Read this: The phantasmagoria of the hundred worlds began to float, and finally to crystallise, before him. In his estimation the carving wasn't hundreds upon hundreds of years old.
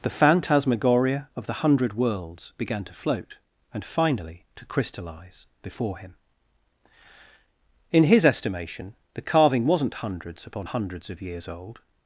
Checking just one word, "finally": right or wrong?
right